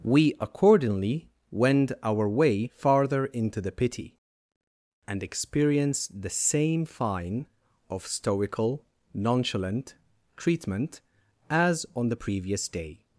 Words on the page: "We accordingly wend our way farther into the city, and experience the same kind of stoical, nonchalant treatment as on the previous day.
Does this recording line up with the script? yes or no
no